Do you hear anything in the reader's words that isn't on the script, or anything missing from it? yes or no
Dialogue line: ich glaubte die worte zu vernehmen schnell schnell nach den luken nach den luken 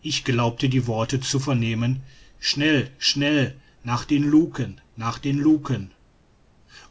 no